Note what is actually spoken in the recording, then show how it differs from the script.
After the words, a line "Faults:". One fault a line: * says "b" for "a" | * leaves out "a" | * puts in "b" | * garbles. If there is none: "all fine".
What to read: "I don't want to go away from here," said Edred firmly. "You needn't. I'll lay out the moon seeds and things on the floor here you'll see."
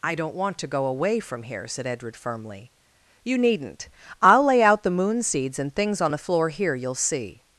"I don't want to go away from here," said Edred firmly. "You needn't. I'll lay out the moon seeds and things on the floor here you'll see."
Faults:
all fine